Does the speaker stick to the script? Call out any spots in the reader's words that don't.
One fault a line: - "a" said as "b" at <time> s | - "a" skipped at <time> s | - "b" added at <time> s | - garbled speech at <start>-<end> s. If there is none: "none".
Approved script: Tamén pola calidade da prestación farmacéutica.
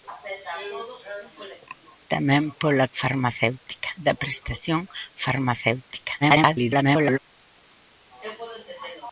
- "calidade" said as "farmacéutica" at 3.0 s
- garbled speech at 6.2-7.2 s